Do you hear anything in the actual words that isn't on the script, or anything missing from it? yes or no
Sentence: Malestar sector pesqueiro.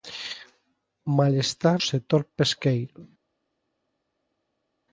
no